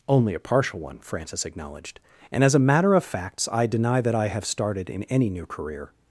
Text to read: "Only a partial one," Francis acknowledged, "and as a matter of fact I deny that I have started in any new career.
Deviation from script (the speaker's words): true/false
true